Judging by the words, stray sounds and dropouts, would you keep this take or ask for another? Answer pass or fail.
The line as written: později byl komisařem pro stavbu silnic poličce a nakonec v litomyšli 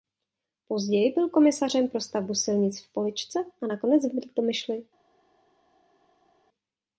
fail